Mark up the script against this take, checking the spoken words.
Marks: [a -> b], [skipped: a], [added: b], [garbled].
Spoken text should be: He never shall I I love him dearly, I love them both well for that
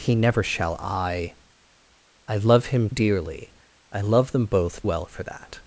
He never shall I I love him dearly, I love them both well for that